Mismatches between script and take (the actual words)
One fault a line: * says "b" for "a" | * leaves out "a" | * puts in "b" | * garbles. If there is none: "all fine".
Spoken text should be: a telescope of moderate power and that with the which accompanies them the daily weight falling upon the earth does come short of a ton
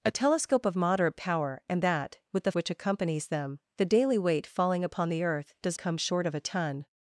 all fine